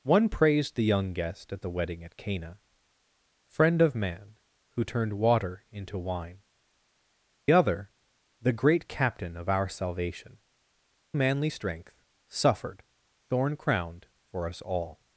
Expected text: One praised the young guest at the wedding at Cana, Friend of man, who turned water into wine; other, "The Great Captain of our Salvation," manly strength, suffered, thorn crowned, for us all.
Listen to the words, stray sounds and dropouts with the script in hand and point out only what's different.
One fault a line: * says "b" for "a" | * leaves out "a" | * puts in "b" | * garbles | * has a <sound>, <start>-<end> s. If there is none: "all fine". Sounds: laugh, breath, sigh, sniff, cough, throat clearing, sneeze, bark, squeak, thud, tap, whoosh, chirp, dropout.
all fine